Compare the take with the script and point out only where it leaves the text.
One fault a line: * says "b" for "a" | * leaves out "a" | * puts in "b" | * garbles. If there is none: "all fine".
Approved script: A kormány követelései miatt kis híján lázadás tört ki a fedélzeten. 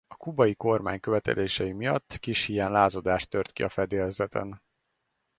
* puts in "kubai"